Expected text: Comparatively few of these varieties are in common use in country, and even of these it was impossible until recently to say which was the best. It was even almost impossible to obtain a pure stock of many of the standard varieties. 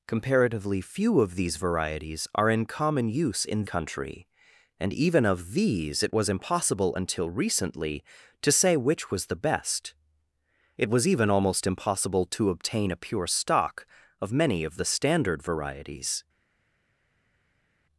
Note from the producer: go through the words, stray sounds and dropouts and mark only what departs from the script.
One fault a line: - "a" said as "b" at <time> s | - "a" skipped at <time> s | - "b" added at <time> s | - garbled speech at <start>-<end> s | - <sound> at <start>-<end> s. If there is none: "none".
none